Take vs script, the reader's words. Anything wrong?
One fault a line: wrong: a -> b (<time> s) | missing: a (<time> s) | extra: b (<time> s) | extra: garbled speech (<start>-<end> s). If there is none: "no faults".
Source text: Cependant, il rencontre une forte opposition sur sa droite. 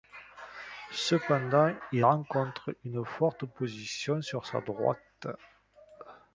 no faults